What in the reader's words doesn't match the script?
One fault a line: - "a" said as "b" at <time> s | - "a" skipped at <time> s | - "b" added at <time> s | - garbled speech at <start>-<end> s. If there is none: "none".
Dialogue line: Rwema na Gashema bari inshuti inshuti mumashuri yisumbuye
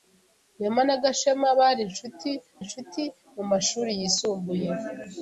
none